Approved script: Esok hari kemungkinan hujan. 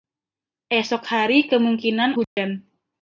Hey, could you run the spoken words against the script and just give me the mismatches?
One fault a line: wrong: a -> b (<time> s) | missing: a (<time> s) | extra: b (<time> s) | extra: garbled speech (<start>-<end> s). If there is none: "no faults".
no faults